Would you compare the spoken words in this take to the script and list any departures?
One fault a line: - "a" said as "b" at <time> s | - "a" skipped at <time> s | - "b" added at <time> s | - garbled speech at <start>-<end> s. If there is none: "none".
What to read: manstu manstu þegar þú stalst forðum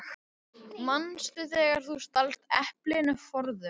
- "manstu" skipped at 1.5 s
- "eplinu" added at 2.6 s